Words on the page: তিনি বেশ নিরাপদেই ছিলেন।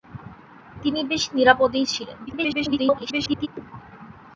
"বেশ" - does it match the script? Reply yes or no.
yes